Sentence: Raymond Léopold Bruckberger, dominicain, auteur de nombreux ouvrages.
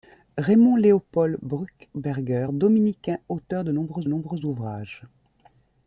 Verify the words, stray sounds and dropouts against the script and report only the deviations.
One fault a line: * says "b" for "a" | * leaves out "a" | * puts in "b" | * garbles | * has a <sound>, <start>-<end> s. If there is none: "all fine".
* puts in "nombreux"